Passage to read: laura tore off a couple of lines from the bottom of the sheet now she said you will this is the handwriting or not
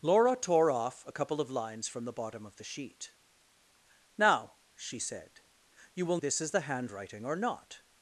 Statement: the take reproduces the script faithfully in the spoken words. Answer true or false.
true